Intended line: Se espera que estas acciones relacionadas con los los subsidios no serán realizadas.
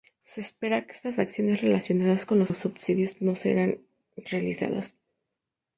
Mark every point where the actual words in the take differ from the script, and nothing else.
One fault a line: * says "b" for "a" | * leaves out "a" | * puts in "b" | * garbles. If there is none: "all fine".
all fine